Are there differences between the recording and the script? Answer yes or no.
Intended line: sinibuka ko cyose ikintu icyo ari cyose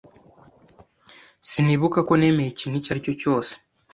yes